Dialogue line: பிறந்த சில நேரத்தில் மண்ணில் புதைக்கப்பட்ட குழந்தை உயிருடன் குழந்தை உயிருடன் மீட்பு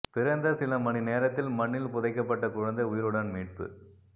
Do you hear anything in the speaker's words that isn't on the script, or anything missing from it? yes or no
yes